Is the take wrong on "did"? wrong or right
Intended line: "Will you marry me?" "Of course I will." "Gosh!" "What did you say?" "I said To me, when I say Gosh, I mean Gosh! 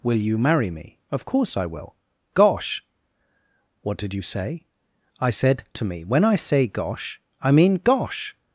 right